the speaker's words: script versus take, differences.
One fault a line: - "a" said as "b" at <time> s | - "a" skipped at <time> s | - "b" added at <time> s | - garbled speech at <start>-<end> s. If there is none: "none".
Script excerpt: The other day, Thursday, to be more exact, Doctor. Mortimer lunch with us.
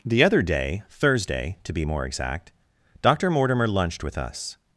- "lunch" said as "lunched" at 3.7 s